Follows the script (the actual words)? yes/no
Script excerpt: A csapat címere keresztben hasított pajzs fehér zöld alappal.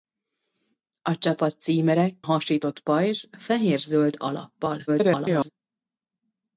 no